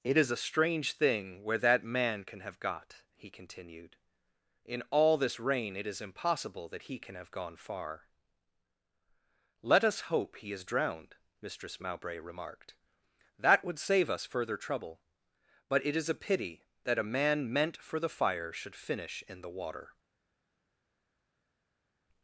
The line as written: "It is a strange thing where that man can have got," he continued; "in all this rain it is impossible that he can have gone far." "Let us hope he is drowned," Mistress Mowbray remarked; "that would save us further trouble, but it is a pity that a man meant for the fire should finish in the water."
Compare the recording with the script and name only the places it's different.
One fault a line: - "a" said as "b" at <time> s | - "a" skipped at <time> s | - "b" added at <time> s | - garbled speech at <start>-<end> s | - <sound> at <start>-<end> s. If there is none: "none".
none